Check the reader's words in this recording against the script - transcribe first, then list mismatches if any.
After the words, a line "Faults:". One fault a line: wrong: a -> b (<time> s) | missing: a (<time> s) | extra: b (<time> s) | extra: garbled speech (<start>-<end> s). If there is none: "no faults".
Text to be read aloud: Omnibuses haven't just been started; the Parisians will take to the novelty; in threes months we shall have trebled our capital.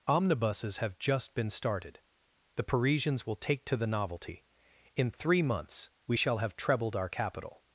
Omnibuses have just been started; the Parisians will take to the novelty; in three months we shall have trebled our capital.
Faults:
wrong: haven't -> have (0.8 s)
wrong: threes -> three (5.1 s)